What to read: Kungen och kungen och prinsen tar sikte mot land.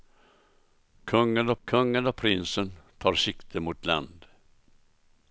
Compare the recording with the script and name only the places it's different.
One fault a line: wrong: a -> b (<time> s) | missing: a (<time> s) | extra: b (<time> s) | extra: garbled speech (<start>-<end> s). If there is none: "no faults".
no faults